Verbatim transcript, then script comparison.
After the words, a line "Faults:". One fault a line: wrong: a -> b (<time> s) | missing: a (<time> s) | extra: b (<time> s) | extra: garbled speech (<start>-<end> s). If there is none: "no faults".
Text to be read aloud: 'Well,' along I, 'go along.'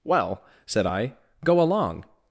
'Well,' said I, 'go along.'
Faults:
wrong: along -> said (0.7 s)